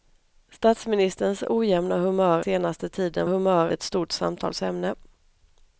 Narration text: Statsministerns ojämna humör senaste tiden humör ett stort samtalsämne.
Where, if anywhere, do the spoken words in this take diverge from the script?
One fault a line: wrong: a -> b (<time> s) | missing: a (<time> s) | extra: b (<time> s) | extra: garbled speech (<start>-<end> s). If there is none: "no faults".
no faults